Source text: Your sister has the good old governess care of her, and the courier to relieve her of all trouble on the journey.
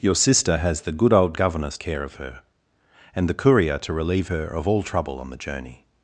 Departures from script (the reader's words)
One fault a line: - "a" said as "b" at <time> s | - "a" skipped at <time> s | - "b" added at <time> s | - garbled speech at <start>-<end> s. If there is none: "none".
none